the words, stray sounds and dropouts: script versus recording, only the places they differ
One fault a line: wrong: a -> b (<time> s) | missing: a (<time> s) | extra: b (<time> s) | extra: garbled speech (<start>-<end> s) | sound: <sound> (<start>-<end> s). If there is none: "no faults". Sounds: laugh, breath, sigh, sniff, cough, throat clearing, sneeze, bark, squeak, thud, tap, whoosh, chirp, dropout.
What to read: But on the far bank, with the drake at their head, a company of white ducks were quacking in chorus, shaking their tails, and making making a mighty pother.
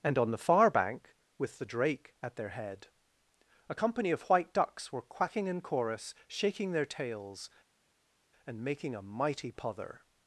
wrong: But -> And (0.0 s)
missing: making (8.9 s)